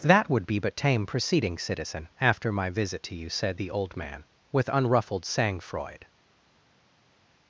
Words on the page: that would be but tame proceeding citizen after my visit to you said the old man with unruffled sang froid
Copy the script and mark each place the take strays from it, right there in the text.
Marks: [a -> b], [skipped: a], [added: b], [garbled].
that would be but tame proceeding citizen after my visit to you said the old man with unruffled sang froid